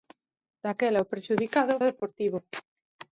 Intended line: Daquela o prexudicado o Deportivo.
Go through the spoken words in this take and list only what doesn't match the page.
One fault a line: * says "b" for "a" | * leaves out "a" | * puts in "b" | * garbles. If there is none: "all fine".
all fine